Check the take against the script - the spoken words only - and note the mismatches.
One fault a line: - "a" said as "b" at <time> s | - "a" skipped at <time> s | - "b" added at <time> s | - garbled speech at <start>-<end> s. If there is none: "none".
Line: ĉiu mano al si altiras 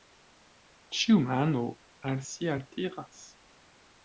none